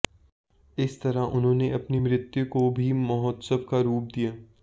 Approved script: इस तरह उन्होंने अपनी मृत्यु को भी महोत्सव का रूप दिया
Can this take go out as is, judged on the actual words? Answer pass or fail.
pass